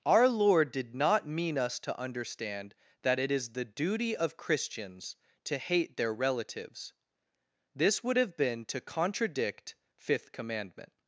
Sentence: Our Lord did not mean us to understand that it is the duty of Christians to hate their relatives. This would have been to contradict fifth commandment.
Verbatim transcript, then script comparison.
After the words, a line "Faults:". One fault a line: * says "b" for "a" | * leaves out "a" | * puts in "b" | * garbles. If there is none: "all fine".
Our Lord did not mean us to understand that it is the duty of Christians to hate their relatives. This would have been to contradict fifth commandment.
Faults:
all fine